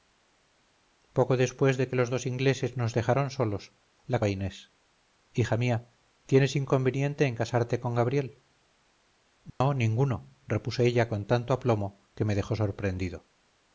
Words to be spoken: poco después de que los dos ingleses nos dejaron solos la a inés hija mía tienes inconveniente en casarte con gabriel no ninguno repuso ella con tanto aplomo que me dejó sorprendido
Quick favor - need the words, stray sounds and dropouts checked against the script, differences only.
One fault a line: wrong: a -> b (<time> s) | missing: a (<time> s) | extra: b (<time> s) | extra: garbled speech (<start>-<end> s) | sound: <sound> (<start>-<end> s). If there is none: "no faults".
sound: dropout (9.5-9.6 s)